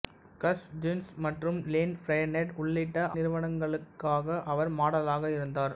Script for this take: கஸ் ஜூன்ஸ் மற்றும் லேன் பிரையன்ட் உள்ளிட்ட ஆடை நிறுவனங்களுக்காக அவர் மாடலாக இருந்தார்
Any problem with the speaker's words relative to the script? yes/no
yes